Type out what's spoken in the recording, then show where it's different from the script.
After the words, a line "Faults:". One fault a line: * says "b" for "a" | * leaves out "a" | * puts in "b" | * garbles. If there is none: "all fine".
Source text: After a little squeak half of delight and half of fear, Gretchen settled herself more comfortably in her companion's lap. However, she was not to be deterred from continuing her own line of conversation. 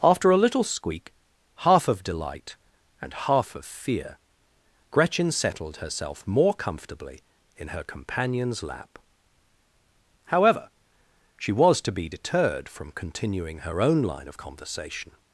After a little squeak half of delight and half of fear, Gretchen settled herself more comfortably in her companion's lap. However, she was to be deterred from continuing her own line of conversation.
Faults:
* leaves out "not"